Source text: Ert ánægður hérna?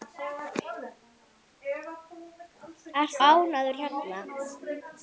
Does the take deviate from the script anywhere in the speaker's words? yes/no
no